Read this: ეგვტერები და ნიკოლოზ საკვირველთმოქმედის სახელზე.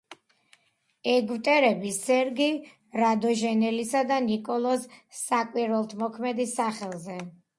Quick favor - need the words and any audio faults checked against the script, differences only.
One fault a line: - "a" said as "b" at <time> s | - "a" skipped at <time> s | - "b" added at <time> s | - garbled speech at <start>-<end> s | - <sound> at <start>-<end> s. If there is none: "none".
- "სერგი რადონეჟელისა" added at 2.0 s